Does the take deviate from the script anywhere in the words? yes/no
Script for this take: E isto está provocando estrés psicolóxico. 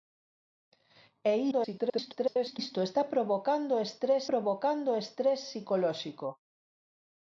yes